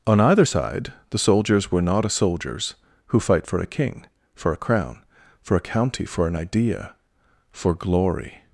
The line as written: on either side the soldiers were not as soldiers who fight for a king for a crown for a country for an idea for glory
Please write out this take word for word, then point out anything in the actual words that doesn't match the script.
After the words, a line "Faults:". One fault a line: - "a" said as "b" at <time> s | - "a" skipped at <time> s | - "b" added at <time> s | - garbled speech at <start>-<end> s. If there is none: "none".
on either side the soldiers were not as soldiers who fight for a king for a crown for a county for an idea for glory
Faults:
- "country" said as "county" at 5.6 s